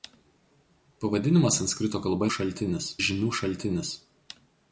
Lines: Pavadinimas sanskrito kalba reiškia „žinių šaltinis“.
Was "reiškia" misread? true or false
true